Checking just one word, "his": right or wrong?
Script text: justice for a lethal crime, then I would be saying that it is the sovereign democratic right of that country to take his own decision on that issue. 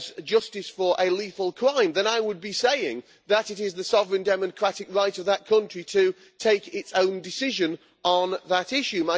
wrong